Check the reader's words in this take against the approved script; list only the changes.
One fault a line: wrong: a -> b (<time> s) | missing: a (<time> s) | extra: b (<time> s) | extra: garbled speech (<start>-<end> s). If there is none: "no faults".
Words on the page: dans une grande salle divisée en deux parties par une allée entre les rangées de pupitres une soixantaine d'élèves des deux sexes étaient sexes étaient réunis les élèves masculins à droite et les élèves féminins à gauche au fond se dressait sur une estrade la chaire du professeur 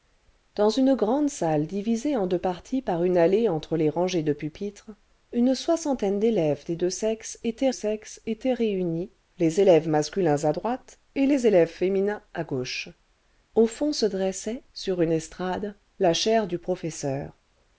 no faults